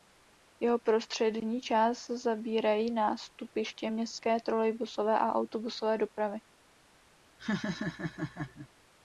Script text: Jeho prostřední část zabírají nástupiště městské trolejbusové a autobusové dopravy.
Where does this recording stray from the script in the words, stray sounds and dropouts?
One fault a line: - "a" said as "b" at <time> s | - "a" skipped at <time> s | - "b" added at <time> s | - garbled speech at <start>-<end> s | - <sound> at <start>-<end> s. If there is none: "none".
- laugh at 7.4-8.7 s